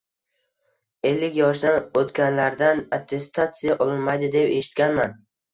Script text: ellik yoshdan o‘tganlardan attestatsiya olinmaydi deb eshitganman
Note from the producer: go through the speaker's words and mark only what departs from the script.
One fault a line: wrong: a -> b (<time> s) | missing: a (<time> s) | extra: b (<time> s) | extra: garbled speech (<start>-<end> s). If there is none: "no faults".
no faults